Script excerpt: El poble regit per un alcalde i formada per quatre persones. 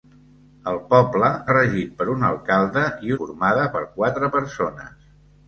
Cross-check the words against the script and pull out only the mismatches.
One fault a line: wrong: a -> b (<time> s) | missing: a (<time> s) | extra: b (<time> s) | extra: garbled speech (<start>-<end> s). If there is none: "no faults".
no faults